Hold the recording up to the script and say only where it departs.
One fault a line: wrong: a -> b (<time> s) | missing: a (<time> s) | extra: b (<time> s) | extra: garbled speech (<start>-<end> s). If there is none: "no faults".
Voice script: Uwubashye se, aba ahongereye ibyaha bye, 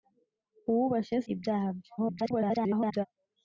missing: se aba ahongereye (1.2 s)
extra: garbled speech (2.0-3.1 s)